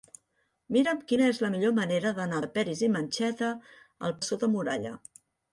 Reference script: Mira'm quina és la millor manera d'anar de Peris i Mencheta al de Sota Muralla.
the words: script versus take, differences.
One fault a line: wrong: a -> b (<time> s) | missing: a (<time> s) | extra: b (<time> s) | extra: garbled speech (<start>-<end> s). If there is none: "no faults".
no faults